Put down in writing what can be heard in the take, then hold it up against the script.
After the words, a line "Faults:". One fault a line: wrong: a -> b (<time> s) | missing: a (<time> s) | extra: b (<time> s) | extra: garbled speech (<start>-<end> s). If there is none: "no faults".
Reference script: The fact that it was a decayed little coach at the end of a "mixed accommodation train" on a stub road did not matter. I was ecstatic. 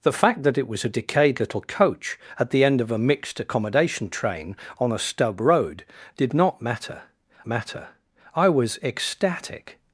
The fact that it was a decayed little coach at the end of a "mixed accommodation train" on a stub road did not matter matter. I was ecstatic.
Faults:
extra: matter (7.5 s)